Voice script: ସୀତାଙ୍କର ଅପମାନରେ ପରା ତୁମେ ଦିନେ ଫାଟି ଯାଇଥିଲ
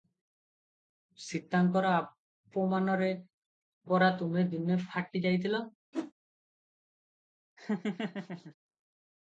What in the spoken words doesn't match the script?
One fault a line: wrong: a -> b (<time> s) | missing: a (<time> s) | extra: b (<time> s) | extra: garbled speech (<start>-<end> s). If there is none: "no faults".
no faults